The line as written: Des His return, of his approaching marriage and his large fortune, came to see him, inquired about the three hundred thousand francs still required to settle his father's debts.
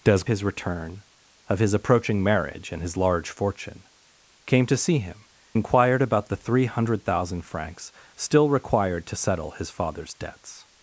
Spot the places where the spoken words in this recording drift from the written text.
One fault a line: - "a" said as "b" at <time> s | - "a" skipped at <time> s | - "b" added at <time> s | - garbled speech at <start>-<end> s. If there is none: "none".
none